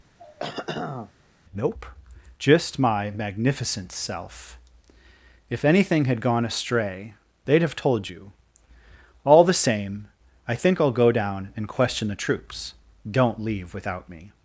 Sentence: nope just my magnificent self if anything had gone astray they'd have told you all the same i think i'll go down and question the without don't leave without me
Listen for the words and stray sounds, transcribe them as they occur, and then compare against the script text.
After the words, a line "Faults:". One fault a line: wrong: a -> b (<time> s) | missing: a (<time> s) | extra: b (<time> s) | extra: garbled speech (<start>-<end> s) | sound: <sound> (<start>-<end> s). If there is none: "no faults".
nope just my magnificent self if anything had gone astray they'd have told you all the same i think i'll go down and question the troops don't leave without me
Faults:
sound: throat clearing (0.2-1.1 s)
wrong: without -> troops (12.1 s)